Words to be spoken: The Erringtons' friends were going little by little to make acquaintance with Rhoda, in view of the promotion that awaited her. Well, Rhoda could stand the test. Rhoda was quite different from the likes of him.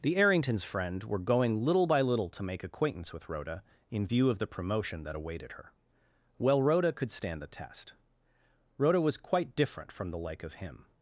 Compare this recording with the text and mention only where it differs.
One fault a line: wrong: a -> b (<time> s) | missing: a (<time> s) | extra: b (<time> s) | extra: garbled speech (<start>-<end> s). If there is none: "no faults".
wrong: friends -> friend (0.6 s)
wrong: likes -> like (10.2 s)